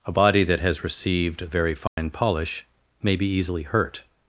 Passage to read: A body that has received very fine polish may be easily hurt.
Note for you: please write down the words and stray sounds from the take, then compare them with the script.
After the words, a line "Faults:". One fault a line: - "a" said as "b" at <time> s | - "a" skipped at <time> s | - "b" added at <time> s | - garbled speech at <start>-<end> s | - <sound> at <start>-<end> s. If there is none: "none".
A body that has received very fine polish may be easily hurt.
Faults:
- dropout at 1.9-2.0 s